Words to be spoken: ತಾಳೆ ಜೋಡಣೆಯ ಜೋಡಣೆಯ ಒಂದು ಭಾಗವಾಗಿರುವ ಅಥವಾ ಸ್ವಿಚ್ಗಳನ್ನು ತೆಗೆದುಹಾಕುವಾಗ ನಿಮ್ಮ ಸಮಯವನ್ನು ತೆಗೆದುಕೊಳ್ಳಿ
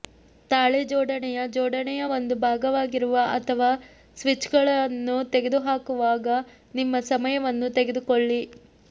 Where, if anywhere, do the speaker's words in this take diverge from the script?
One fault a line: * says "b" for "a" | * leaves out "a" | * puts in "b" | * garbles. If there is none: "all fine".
all fine